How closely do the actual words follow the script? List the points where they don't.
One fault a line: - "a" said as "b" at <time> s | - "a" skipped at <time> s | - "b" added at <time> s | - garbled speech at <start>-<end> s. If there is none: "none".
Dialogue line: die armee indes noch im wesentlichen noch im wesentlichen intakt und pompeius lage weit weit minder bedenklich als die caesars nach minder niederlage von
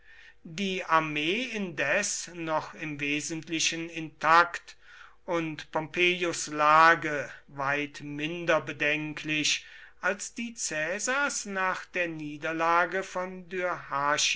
- "noch im wesentlichen" skipped at 3.9 s
- "weit" skipped at 8.0 s
- "minder" said as "der" at 11.8 s